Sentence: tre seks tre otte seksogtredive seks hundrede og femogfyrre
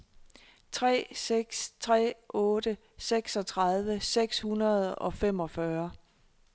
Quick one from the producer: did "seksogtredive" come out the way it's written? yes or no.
yes